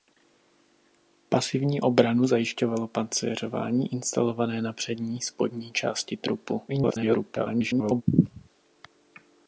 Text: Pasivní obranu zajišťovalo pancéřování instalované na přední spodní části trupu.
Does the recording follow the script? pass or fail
fail